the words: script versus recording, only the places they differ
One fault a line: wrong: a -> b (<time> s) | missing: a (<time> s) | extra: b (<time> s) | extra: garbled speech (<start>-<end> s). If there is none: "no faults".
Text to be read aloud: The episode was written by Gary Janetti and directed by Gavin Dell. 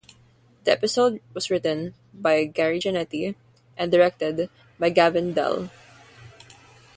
no faults